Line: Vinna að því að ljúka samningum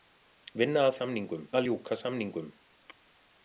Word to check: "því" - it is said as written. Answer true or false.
false